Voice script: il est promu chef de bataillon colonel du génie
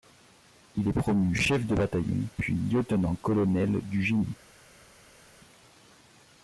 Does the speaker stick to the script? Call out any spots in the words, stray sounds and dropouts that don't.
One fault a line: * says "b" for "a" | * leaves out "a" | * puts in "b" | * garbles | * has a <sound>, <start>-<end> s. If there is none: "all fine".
* puts in "puis lieutenant"